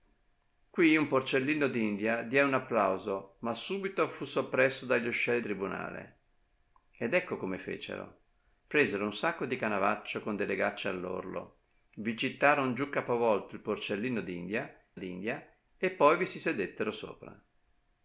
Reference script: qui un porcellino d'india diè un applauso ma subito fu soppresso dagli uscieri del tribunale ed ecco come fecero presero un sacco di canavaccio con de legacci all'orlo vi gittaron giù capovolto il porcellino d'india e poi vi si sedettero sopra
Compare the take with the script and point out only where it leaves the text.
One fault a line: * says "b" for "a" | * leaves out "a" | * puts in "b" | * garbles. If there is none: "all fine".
* leaves out "del"
* puts in "d'india"